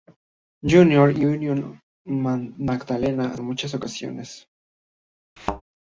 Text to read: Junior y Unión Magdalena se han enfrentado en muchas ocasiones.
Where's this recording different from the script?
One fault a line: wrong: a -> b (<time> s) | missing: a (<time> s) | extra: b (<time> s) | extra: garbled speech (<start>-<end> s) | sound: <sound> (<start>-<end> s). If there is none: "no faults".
missing: se han enfrentado (3.4 s)
sound: thud (5.4-5.6 s)